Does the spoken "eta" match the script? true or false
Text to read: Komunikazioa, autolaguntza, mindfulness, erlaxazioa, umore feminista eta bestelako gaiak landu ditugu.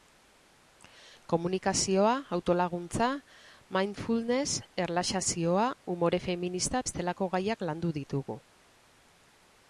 false